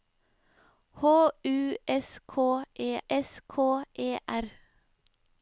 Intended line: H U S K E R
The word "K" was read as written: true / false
true